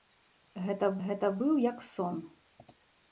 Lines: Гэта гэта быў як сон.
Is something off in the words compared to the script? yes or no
no